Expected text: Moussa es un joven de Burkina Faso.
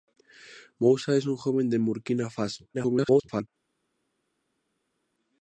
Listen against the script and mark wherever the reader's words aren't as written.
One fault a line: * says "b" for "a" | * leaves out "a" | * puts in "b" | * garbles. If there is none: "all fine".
* garbles